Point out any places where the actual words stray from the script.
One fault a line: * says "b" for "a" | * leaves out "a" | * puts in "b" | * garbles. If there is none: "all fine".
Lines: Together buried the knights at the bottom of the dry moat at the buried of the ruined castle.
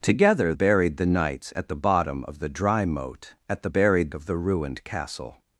all fine